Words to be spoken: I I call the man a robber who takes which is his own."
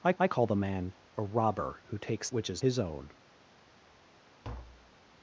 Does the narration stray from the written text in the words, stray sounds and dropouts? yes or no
yes